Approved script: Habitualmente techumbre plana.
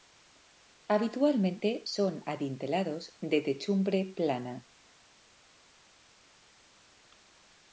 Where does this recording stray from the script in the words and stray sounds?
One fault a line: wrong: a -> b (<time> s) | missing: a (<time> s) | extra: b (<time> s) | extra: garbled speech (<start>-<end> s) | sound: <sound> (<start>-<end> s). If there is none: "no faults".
extra: son adintelados de (1.8 s)